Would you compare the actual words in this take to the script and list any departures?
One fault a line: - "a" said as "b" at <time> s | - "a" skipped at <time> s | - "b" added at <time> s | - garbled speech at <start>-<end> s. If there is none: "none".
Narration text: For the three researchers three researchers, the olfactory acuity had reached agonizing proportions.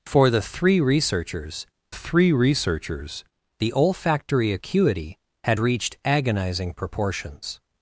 none